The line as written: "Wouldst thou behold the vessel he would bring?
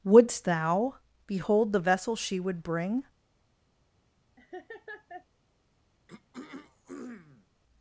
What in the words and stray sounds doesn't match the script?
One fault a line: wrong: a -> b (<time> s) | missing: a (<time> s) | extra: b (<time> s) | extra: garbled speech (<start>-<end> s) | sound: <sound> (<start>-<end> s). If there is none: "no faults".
wrong: he -> she (2.2 s)
sound: laugh (4.4-5.3 s)
sound: throat clearing (6.1-7.5 s)